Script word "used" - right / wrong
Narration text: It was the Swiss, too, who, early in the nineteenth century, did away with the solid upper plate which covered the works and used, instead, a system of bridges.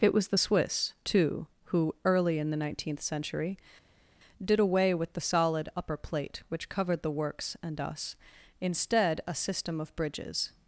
wrong